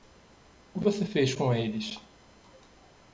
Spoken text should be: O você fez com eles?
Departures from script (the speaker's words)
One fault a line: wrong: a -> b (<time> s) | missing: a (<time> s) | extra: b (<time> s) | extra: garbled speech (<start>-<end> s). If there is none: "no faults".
no faults